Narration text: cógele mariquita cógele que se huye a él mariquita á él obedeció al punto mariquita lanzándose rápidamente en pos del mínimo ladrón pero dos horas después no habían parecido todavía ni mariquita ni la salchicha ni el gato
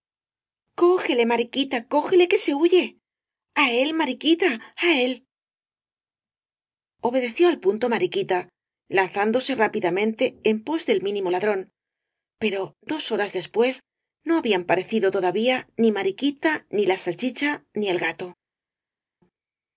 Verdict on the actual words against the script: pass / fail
pass